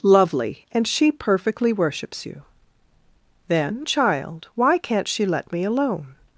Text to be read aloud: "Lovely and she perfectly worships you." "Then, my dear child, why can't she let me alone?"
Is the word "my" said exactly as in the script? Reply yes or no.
no